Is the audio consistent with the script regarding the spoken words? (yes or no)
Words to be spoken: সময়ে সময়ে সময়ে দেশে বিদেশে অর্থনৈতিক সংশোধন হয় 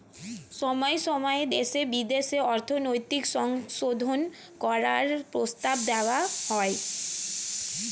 no